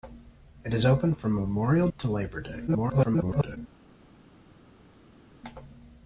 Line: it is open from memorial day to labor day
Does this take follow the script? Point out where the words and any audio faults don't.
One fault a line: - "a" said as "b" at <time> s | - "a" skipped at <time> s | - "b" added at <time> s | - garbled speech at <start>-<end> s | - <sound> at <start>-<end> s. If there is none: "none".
- "day" skipped at 1.9 s
- garbled speech at 2.7-3.6 s